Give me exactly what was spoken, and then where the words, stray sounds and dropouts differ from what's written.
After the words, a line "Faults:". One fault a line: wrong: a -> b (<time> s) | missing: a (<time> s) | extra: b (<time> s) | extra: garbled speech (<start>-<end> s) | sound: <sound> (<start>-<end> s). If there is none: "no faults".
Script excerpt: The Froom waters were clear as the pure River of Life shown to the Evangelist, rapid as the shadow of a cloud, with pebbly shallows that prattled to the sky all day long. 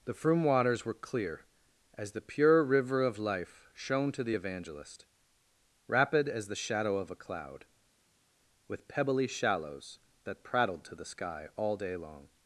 The Froom waters were clear as the pure River of Life shown to the Evangelist, rapid as the shadow of a cloud, with pebbly shallows that prattled to the sky all day long.
Faults:
no faults